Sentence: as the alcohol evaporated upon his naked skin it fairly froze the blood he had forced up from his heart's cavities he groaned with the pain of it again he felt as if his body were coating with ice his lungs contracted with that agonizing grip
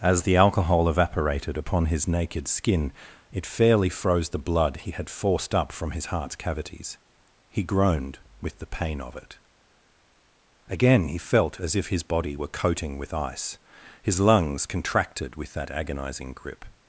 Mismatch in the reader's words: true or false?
false